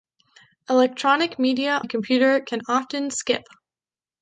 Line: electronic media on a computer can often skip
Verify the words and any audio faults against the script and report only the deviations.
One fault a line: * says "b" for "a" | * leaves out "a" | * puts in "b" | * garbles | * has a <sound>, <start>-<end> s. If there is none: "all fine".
* leaves out "on"